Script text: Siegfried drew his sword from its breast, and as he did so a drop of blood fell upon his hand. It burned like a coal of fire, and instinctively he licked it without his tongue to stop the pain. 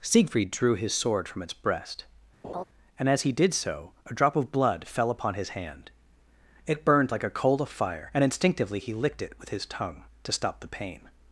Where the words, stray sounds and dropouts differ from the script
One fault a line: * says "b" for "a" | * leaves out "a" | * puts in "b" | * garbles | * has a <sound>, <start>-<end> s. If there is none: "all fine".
* has a laugh, 2.4-2.6 s
* says "with" for "without"